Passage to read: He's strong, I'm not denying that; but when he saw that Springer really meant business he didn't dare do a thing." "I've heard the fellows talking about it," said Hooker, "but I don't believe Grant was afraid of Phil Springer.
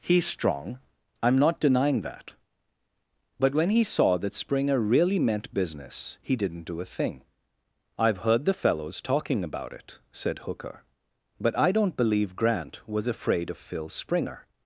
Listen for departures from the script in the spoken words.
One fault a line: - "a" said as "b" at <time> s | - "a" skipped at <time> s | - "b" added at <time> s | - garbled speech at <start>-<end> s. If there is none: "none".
- "dare" skipped at 6.6 s